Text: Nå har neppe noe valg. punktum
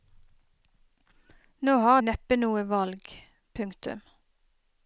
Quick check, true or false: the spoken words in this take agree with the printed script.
true